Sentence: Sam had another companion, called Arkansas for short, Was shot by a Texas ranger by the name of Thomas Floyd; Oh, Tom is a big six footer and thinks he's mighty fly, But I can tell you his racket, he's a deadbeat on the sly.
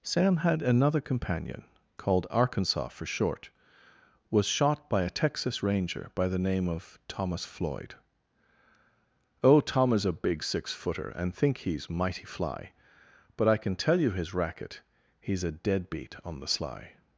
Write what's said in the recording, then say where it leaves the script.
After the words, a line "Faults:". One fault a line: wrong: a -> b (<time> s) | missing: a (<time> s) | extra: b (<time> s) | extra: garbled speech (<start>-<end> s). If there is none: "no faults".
Sam had another companion, called Arkansas for short, Was shot by a Texas ranger by the name of Thomas Floyd; Oh, Tom is a big six footer and think he's mighty fly, But I can tell you his racket, he's a deadbeat on the sly.
Faults:
wrong: thinks -> think (11.3 s)